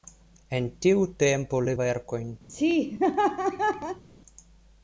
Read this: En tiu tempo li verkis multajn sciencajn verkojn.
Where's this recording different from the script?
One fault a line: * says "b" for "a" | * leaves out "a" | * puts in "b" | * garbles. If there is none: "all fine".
* leaves out "verkis multajn sciencajn"